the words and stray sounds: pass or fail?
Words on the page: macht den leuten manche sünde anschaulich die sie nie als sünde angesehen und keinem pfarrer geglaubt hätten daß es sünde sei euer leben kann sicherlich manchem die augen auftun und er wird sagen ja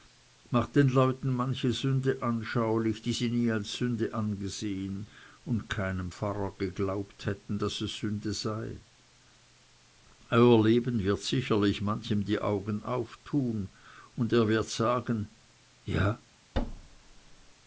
fail